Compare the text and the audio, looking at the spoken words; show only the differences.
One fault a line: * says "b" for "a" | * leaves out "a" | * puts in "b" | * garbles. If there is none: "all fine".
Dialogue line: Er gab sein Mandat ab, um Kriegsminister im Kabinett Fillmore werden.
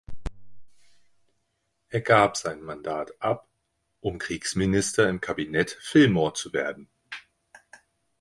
* puts in "zu"